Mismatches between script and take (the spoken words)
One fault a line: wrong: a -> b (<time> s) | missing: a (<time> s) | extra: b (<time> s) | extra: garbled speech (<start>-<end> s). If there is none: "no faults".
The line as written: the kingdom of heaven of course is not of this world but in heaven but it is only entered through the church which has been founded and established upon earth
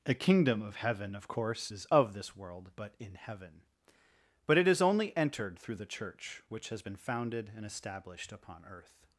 missing: not (1.8 s)